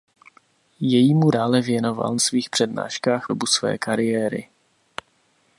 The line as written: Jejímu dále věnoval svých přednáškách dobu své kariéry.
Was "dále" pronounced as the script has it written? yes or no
yes